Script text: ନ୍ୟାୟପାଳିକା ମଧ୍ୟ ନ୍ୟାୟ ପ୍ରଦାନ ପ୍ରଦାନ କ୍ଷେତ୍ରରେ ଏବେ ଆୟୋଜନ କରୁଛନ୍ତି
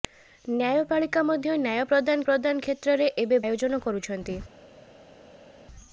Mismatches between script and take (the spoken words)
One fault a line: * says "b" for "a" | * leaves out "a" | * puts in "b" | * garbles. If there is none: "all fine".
all fine